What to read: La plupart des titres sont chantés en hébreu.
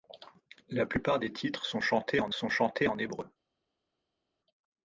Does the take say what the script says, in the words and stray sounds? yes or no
no